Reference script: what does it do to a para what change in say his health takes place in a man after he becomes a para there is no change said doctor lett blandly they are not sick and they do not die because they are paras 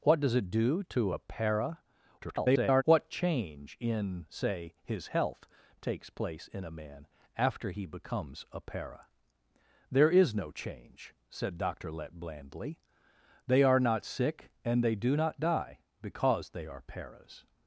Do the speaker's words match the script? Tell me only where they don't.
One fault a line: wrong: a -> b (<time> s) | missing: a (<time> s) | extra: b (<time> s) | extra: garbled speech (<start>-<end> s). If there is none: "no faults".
extra: garbled speech (2.2-2.8 s)